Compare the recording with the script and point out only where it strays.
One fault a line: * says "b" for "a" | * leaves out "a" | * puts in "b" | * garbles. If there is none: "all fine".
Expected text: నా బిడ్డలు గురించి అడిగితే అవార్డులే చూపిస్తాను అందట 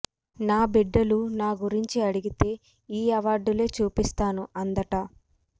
* puts in "నా"
* puts in "ఈ"